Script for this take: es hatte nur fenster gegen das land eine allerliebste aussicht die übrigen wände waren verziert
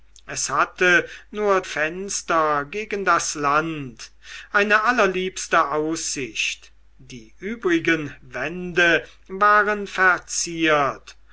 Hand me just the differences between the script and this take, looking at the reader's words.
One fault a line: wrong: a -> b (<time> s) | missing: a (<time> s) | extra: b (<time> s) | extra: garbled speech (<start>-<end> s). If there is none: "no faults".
no faults